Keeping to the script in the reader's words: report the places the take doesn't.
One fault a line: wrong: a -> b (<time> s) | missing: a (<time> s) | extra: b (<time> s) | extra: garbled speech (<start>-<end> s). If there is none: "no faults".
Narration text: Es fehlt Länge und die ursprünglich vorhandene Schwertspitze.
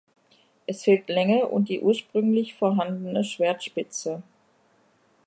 no faults